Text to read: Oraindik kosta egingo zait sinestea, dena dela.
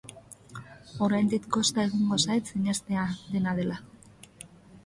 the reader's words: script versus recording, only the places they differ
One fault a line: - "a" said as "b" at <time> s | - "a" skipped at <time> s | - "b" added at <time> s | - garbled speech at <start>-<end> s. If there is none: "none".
none